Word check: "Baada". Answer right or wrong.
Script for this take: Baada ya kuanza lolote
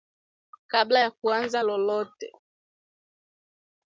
wrong